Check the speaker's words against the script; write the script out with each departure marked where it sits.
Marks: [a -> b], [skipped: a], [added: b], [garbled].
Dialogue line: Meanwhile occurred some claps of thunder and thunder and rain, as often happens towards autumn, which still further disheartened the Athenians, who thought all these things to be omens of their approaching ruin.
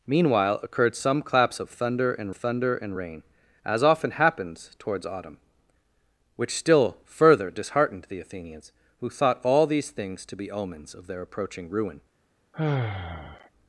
Meanwhile occurred some claps of thunder and thunder and rain, as often happens towards autumn, which still further disheartened the Athenians, who thought all these things to be omens of their approaching ruin.